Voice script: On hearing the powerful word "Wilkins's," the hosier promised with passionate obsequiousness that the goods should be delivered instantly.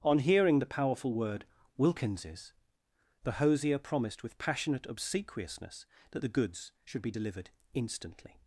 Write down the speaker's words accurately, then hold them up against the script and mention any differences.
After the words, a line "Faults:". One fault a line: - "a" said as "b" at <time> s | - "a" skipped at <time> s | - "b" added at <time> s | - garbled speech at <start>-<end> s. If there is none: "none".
On hearing the powerful word "Wilkins's," the hosier promised with passionate obsequiousness that the goods should be delivered instantly.
Faults:
none